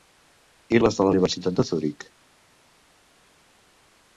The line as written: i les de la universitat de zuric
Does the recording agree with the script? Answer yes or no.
yes